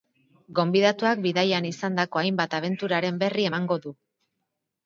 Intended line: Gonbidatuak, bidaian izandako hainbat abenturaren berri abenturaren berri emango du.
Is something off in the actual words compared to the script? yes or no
yes